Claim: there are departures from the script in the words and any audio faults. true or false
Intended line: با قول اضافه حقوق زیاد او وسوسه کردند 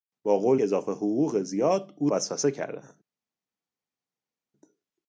false